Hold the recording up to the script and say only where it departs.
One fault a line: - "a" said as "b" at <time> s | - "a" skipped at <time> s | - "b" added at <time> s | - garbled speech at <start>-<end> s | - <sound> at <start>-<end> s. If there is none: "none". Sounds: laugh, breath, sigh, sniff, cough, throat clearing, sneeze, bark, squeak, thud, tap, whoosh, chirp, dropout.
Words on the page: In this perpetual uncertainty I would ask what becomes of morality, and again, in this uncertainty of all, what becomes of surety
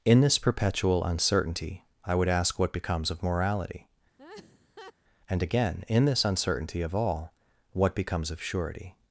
- laugh at 4.2-4.9 s